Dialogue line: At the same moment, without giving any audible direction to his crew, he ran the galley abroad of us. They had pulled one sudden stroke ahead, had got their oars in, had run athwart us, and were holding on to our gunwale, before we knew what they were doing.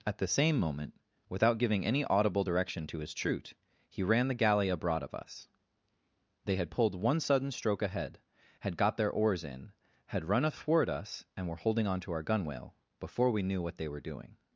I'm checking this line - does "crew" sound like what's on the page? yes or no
no